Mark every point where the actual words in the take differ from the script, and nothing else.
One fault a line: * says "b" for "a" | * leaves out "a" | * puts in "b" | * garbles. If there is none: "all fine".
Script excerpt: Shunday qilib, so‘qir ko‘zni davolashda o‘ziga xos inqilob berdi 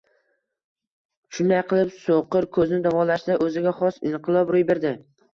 * puts in "ro‘y"